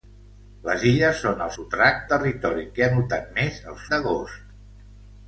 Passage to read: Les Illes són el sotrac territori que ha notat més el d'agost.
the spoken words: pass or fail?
pass